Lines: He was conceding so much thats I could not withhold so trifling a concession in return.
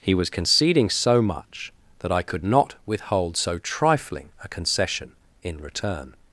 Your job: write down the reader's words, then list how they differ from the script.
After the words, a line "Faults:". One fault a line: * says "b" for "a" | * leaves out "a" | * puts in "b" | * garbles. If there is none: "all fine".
He was conceding so much that I could not withhold so trifling a concession in return.
Faults:
* says "that" for "thats"